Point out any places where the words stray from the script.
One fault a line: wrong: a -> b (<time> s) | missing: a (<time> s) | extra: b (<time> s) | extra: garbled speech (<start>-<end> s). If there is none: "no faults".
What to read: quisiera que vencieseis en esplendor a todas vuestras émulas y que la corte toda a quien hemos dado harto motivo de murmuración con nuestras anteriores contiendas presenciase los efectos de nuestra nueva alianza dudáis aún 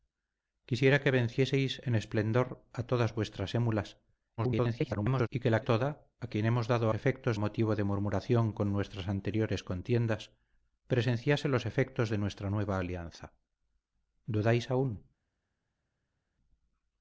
extra: garbled speech (4.4-5.3 s)
missing: corte (5.6 s)
wrong: harto -> efectos (6.9 s)